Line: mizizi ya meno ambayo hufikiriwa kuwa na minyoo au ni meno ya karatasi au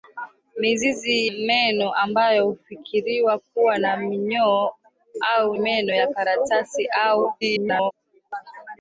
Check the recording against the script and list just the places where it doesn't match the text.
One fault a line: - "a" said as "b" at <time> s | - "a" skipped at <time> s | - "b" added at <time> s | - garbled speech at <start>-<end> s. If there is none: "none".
- "ya" skipped at 1.3 s
- "ni" skipped at 5.6 s
- garbled speech at 7.4-7.9 s